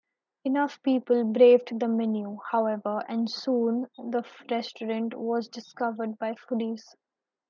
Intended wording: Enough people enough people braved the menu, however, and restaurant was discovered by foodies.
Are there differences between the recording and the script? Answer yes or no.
yes